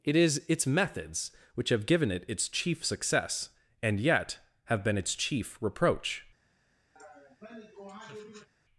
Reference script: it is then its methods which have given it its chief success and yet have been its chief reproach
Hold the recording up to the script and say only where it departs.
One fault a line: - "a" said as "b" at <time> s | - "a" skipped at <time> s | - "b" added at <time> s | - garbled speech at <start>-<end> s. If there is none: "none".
- "then" skipped at 0.4 s